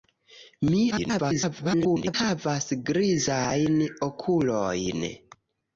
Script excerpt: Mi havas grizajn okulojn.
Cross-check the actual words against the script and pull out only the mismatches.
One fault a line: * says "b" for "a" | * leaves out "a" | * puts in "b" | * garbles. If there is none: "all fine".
* garbles